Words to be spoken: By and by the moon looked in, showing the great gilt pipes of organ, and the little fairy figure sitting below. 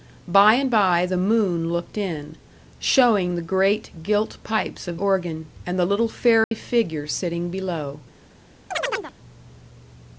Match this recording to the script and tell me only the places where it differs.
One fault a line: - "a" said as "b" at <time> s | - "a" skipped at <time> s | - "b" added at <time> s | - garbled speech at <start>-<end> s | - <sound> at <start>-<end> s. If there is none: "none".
- dropout at 6.4-6.5 s
- chirp at 8.7-9.1 s